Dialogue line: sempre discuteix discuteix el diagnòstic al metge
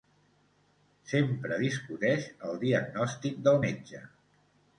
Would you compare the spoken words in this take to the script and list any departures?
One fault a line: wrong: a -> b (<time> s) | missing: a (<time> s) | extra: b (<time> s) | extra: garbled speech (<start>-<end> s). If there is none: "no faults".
missing: discuteix (2.3 s)
wrong: al -> del (3.5 s)